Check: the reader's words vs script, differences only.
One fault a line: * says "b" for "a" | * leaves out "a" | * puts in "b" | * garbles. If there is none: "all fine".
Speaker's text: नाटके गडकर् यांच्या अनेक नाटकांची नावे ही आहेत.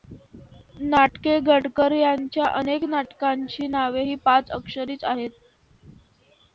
* puts in "पाच अक्षरीच"